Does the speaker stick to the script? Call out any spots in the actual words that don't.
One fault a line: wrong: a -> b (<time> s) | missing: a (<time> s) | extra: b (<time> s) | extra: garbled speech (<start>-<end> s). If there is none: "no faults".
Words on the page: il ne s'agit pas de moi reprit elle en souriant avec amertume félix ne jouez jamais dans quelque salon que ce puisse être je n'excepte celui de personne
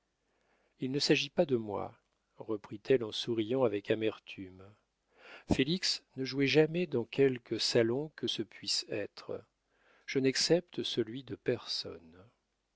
no faults